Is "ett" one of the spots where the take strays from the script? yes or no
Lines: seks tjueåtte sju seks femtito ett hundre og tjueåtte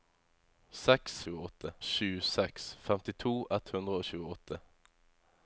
no